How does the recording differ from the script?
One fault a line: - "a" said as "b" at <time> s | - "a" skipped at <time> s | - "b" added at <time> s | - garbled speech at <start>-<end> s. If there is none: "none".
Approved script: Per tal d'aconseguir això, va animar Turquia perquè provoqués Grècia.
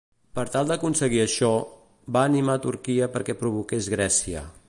none